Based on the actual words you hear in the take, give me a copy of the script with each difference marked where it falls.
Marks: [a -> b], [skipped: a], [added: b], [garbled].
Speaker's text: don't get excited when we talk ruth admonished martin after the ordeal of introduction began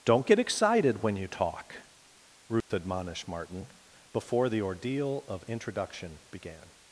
don't get excited when [we -> you] talk ruth admonished martin [after -> before] the ordeal of introduction began